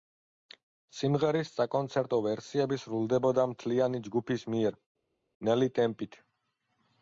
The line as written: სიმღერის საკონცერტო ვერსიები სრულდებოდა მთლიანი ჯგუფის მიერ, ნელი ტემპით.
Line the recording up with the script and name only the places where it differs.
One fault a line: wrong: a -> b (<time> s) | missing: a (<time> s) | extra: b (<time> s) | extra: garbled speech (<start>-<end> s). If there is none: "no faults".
no faults